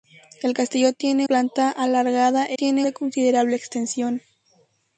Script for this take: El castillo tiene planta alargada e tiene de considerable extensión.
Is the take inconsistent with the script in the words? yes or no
no